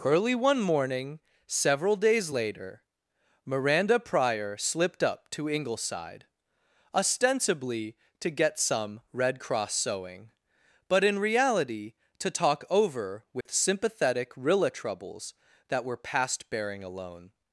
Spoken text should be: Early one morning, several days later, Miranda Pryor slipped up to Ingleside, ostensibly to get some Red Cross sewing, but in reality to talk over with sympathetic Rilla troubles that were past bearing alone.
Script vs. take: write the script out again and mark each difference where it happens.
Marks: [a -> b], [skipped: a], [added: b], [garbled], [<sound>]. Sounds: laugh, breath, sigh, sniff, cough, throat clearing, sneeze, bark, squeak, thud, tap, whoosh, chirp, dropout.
Early one morning, several days later, Miranda Pryor slipped up to Ingleside, ostensibly to get some Red Cross sewing, but in reality to talk over with [dropout] sympathetic Rilla troubles that were past bearing alone.